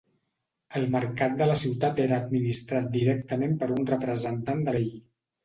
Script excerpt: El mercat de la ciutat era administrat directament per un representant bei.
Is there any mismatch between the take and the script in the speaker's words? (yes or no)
no